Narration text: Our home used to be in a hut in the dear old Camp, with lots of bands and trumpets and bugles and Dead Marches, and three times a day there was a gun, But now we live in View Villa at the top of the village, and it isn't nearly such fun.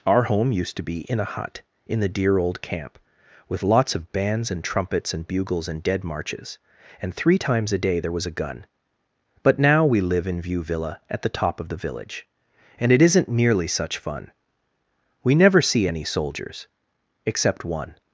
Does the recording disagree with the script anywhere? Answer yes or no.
yes